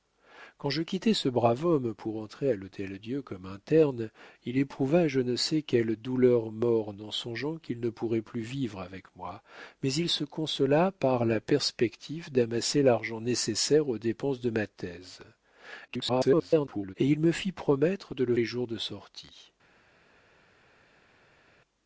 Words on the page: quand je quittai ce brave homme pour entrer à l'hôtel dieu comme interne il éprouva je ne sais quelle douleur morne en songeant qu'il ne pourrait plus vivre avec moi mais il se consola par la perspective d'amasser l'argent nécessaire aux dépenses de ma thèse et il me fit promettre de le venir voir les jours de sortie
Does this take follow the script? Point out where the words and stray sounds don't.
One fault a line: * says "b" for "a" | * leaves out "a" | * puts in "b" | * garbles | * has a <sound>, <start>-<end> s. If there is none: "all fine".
* garbles
* leaves out "venir voir"